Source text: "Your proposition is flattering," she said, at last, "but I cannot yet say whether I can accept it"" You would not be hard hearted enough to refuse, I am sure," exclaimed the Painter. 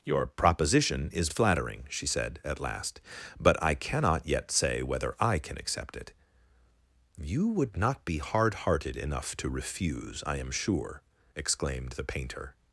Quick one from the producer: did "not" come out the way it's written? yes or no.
yes